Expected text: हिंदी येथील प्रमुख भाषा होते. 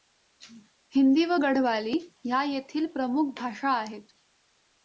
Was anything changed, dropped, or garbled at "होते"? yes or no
yes